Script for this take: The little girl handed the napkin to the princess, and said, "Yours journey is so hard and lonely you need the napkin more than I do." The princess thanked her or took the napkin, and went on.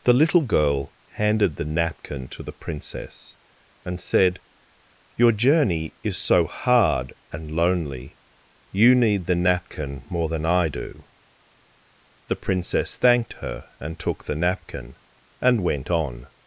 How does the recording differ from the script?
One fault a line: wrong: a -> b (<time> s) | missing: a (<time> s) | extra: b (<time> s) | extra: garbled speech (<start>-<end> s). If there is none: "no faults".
wrong: Yours -> Your (5.2 s)
wrong: or -> and (13.8 s)